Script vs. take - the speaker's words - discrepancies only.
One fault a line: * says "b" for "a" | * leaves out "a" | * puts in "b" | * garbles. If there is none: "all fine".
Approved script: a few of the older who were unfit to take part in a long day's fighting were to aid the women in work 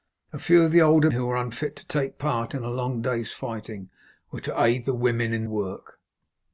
all fine